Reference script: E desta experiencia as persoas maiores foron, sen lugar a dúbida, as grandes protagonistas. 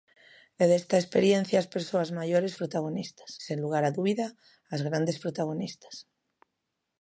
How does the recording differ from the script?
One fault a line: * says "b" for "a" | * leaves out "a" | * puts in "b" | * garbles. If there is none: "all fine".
* says "protagonistas" for "foron"